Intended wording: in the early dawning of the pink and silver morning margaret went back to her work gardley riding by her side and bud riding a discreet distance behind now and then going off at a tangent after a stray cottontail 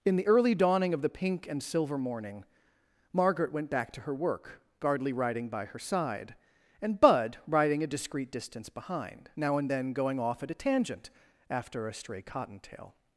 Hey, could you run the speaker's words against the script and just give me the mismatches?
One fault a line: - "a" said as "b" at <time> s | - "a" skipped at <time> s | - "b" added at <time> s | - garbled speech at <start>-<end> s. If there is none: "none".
none